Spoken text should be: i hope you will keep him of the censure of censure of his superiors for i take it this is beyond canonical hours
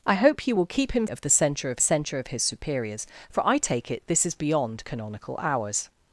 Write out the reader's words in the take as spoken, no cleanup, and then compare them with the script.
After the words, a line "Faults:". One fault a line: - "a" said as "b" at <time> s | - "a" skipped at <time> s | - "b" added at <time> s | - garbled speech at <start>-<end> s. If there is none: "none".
i hope you will keep him of the censure of censure of his superiors for i take it this is beyond canonical hours
Faults:
none